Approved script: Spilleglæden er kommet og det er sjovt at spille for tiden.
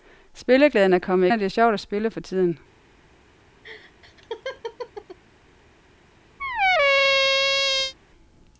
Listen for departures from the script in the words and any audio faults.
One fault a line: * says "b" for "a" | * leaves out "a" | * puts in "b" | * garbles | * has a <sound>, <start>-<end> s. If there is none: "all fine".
* has a laugh, 3.6-5.2 s
* has a squeak, 6.4-7.9 s